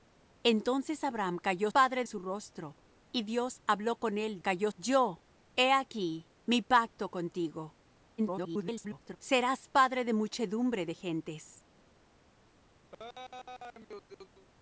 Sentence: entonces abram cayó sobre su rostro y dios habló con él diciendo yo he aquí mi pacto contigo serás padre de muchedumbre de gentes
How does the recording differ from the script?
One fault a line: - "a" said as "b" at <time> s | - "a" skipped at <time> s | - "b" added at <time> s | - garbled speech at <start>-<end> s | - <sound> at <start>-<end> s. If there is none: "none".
- "sobre" said as "padre" at 1.7 s
- "diciendo" said as "cayó" at 4.4 s
- garbled speech at 8.2-9.2 s
- laugh at 12.9-14.5 s